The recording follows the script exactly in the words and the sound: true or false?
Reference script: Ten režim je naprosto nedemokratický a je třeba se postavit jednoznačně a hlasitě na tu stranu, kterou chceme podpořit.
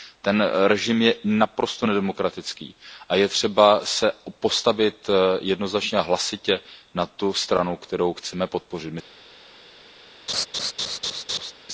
false